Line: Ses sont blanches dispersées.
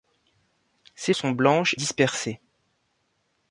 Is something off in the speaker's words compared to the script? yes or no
no